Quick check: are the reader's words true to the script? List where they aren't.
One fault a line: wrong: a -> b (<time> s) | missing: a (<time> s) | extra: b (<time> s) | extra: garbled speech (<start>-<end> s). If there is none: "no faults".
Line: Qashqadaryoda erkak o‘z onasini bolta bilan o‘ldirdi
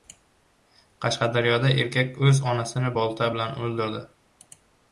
no faults